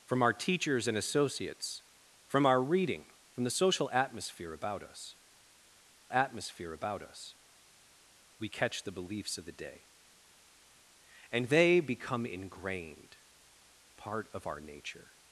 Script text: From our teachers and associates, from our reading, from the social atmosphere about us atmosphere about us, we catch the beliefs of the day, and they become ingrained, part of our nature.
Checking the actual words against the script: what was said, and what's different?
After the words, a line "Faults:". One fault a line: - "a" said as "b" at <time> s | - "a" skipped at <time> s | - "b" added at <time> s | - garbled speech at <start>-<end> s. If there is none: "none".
From our teachers and associates, from our reading, from the social atmosphere about us atmosphere about us, we catch the beliefs of the day, and they become ingrained, part of our nature.
Faults:
none